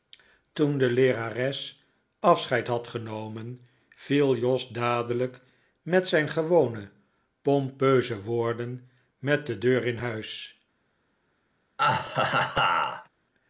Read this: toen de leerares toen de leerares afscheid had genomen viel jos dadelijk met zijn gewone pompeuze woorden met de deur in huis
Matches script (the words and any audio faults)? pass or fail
fail